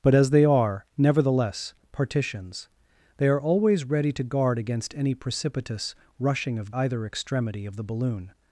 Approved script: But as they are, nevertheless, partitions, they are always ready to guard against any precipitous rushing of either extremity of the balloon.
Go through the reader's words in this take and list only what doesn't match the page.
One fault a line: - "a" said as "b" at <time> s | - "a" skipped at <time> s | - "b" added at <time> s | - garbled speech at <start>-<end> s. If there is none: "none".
none